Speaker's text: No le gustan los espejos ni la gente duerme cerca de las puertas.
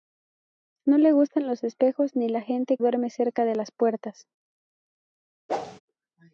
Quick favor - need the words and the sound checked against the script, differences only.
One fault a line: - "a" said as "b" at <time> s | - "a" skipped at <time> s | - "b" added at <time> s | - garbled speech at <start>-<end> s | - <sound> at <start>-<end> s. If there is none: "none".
- whoosh at 5.5-5.8 s